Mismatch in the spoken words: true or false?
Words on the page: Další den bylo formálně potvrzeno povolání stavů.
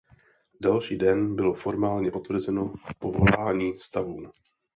false